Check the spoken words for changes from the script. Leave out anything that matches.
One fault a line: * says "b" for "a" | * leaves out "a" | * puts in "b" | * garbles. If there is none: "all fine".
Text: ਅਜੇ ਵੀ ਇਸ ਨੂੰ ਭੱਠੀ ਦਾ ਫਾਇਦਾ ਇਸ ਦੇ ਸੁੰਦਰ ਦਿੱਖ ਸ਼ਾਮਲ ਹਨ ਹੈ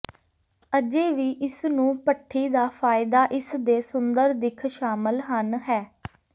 all fine